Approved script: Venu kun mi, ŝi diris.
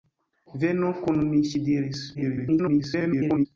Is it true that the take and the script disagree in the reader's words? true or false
true